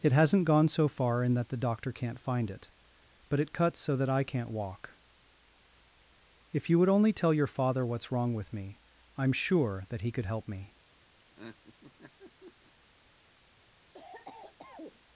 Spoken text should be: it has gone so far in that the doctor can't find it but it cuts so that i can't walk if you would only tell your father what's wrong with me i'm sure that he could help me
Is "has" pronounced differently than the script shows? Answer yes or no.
yes